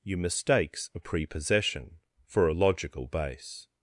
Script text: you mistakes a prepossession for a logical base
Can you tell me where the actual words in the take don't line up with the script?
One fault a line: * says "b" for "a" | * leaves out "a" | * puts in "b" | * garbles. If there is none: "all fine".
all fine